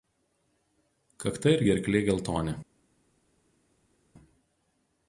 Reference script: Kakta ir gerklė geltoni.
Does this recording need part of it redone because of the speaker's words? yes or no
no